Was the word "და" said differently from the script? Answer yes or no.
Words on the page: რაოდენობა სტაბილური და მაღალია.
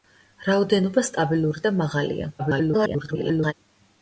no